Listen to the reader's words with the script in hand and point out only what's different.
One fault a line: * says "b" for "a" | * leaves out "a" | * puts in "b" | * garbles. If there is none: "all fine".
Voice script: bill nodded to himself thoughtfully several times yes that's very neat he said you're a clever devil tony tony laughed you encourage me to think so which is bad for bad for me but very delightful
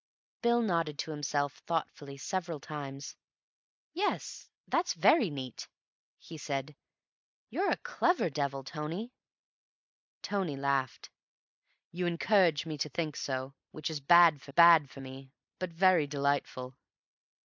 all fine